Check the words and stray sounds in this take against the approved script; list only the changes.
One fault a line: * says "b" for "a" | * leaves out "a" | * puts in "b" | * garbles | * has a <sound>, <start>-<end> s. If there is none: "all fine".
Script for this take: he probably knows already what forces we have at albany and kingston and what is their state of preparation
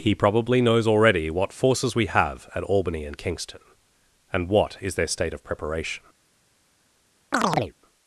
* has a chirp, 7.3-7.7 s